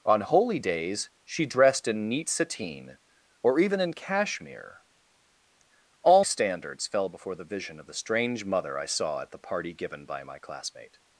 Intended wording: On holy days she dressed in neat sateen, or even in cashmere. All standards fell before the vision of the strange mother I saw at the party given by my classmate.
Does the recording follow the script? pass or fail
pass